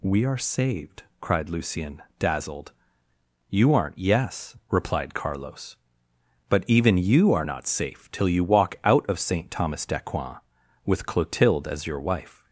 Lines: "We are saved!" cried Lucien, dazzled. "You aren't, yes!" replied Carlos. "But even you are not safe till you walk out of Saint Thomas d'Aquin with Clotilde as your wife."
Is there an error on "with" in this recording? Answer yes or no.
no